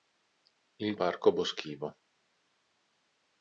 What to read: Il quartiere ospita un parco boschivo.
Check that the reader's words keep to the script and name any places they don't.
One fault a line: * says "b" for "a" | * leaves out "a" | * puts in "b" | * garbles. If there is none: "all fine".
* leaves out "quartiere ospita un"